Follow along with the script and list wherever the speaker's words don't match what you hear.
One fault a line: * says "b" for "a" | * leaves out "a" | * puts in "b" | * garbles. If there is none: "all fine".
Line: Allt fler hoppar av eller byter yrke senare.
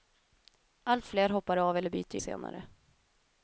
* leaves out "yrke"